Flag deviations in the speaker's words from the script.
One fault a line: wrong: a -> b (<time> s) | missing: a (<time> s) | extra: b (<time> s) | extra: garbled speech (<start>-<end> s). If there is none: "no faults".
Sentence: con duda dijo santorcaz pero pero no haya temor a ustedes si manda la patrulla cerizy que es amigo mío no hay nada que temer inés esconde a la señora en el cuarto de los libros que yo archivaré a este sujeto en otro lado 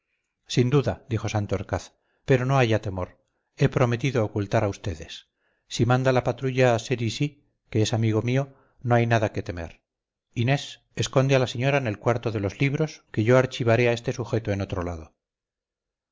wrong: con -> sin (0.5 s)
missing: pero (2.4 s)
extra: he prometido ocultar (3.5 s)